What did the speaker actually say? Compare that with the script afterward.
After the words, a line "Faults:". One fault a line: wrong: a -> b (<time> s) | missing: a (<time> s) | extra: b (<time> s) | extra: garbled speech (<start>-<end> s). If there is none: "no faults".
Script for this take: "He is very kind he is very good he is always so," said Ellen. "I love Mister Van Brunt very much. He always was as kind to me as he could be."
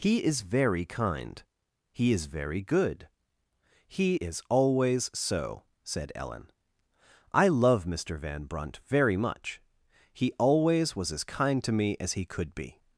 "He is very kind he is very good he is always so," said Ellen. "I love Mister Van Brunt very much. He always was as kind to me as he could be."
Faults:
no faults